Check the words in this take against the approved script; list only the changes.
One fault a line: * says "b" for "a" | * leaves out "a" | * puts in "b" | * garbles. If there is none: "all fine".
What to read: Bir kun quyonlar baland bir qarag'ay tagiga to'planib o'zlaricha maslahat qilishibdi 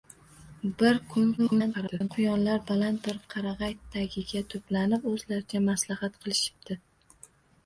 * garbles